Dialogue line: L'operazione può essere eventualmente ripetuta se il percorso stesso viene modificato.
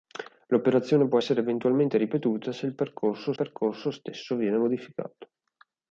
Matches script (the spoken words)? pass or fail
fail